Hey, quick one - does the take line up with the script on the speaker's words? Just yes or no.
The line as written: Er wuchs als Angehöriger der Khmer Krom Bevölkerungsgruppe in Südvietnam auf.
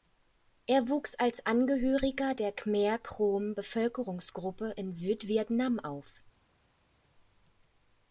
yes